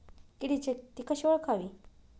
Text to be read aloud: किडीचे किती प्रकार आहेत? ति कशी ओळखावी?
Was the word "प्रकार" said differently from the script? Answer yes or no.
yes